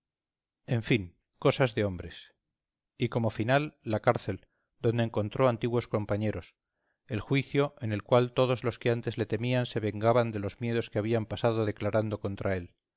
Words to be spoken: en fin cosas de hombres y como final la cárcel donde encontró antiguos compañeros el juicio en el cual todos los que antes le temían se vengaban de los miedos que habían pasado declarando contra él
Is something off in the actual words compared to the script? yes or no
no